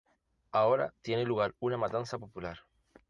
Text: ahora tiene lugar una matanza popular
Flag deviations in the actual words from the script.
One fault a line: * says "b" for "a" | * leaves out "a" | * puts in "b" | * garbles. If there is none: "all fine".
all fine